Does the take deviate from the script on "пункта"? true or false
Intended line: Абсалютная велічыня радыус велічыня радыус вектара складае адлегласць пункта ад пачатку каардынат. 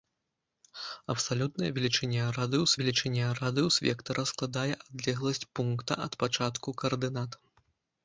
false